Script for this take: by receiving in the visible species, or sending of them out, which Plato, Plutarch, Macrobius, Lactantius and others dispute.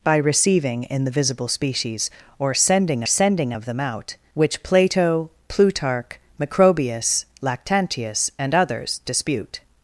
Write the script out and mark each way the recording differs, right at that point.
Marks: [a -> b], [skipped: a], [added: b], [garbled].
by receiving in the visible species, or sending [added: sending] of them out, which Plato, Plutarch, Macrobius, Lactantius and others dispute.